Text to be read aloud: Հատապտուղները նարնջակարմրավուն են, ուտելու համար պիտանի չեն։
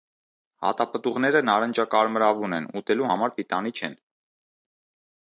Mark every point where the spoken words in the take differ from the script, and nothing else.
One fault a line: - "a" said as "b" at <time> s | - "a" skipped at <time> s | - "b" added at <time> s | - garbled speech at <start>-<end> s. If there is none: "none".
none